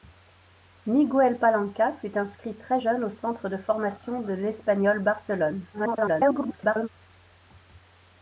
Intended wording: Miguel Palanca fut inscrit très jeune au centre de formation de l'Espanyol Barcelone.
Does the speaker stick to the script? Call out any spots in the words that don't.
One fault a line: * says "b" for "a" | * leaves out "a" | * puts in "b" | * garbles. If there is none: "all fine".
* garbles